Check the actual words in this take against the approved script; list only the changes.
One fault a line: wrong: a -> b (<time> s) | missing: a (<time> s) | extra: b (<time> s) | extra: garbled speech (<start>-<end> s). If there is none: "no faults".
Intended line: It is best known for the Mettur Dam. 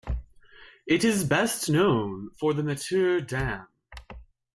no faults